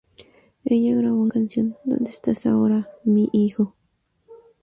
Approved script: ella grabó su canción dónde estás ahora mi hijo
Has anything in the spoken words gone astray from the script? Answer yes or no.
yes